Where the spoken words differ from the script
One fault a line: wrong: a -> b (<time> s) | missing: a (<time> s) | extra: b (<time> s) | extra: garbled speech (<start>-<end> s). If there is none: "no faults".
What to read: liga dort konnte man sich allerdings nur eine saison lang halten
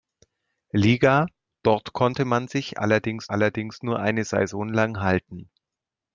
extra: allerdings (3.3 s)